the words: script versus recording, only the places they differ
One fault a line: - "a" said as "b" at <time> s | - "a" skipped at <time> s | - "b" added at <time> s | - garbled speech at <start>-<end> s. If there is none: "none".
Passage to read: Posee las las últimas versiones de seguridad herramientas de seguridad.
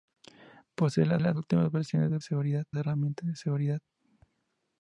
none